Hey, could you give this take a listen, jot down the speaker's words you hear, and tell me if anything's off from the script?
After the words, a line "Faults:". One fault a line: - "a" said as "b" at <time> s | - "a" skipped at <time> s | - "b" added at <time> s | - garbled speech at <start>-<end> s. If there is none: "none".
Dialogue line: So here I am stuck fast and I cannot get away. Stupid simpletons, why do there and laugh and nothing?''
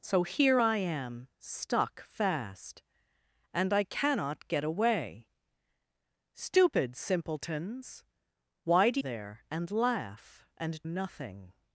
So here I am stuck fast and I cannot get away. Stupid simpletons, why do there and laugh and nothing?''
Faults:
none